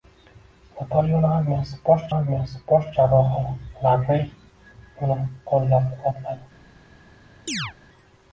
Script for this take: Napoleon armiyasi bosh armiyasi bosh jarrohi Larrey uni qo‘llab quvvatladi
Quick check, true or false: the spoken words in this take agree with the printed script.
true